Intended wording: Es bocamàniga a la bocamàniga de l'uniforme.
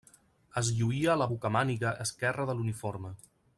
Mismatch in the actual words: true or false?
true